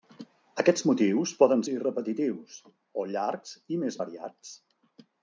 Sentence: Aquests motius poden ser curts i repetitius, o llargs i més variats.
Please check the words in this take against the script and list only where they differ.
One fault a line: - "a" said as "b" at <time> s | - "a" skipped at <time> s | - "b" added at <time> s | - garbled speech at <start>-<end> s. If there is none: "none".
- "ser curts" skipped at 1.6 s